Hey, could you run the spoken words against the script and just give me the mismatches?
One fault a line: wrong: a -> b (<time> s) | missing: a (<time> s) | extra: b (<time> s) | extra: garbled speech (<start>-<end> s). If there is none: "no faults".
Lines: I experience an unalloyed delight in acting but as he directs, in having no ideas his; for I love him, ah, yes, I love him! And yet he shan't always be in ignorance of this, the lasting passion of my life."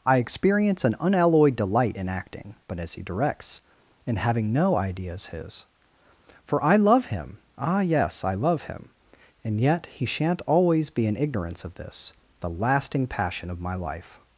no faults